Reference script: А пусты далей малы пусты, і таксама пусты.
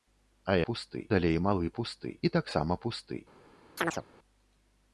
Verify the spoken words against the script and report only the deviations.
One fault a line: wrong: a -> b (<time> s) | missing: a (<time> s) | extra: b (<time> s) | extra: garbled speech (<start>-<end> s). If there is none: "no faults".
no faults